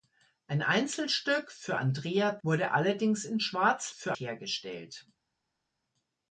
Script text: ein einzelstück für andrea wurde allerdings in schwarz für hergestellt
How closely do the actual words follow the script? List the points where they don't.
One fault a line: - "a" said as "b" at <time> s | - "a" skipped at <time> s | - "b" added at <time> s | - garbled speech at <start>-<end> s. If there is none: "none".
none